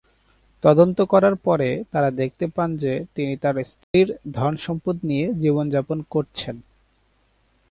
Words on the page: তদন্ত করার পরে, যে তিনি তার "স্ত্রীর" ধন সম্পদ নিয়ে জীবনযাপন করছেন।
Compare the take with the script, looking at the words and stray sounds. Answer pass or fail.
fail